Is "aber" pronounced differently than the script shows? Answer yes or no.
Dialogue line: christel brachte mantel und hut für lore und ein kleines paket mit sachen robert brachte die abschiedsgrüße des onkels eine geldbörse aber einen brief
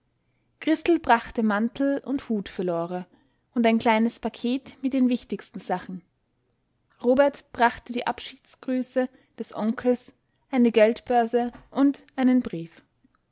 yes